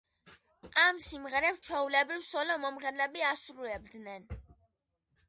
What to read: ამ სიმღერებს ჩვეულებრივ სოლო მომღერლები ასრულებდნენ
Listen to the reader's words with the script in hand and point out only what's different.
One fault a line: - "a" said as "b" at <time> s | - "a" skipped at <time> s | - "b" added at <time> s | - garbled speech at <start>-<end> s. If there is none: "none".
none